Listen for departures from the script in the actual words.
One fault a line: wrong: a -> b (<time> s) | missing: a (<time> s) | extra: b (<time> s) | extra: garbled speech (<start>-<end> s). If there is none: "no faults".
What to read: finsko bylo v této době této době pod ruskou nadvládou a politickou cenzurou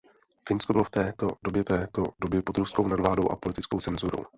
no faults